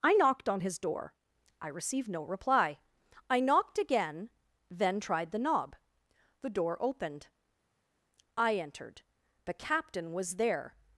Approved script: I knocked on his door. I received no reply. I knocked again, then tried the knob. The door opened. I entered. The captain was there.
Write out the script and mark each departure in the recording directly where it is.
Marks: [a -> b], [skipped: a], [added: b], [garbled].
I knocked on his door. I received no reply. I knocked again, then tried the knob. The door opened. I entered. The captain was there.